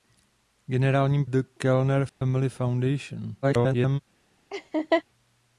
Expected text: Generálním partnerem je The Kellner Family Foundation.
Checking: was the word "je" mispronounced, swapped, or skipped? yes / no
yes